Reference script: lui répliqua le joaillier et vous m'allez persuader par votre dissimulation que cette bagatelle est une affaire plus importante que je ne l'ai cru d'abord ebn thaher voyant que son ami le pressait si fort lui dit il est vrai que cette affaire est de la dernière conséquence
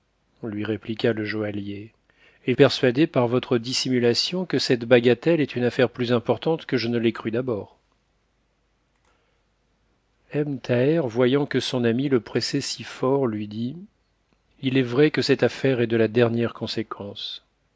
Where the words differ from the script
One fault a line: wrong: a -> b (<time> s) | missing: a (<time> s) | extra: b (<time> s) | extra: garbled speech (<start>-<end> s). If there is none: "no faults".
missing: vous m'allez (2.5 s)